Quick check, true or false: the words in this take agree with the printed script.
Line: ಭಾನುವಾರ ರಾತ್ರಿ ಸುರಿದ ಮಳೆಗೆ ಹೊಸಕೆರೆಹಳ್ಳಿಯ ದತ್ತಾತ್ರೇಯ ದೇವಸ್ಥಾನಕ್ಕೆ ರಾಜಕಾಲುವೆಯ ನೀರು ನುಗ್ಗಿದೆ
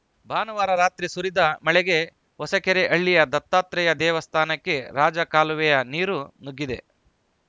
true